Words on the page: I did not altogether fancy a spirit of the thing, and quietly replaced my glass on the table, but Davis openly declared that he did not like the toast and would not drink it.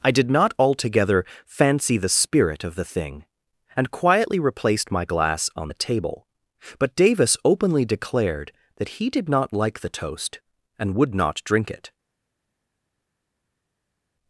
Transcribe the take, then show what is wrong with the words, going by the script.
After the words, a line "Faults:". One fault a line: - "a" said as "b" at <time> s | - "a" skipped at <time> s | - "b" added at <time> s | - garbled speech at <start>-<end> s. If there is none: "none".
I did not altogether fancy the spirit of the thing, and quietly replaced my glass on the table, but Davis openly declared that he did not like the toast and would not drink it.
Faults:
- "a" said as "the" at 2.0 s